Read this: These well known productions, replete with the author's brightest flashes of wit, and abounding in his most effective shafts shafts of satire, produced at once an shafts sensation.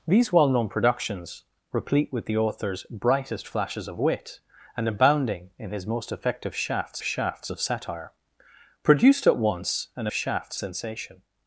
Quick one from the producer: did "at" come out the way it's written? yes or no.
yes